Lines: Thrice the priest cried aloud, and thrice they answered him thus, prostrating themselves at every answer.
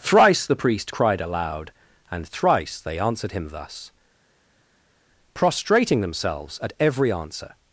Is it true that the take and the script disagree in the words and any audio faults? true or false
false